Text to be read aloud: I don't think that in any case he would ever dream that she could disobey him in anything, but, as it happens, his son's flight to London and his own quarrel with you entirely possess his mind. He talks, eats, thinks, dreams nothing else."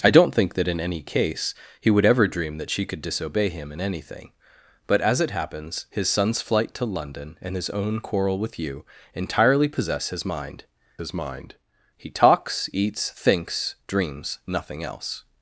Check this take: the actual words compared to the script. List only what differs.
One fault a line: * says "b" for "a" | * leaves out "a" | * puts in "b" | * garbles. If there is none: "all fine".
* puts in "his mind"